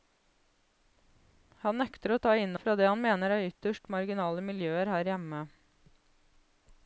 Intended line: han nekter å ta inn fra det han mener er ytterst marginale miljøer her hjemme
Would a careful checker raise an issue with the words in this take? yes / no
no